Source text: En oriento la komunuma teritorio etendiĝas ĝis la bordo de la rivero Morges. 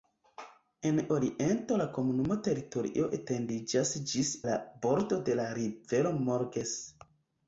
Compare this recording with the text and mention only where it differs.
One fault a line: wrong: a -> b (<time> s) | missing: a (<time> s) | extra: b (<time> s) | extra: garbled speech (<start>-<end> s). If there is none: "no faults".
no faults